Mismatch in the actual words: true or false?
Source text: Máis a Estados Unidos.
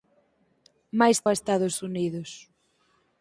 false